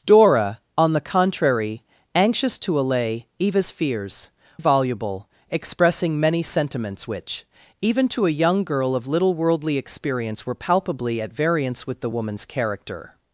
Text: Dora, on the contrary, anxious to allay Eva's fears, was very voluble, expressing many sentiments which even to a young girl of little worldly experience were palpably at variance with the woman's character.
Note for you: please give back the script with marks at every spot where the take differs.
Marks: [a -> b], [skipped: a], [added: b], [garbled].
Dora, on the contrary, anxious to allay Eva's fears, [skipped: was very] voluble, expressing many sentiments which even to a young girl of little worldly experience were palpably at variance with the woman's character.